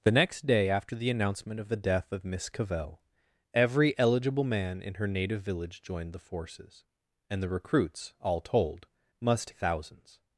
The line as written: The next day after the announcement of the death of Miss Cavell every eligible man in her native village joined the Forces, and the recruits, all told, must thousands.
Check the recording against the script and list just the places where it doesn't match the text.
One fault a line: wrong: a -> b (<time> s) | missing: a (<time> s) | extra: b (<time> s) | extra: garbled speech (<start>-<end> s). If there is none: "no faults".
no faults